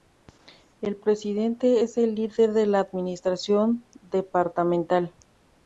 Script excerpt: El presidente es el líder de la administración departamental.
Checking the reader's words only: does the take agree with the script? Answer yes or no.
yes